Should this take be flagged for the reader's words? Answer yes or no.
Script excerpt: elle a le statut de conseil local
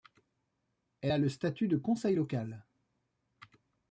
no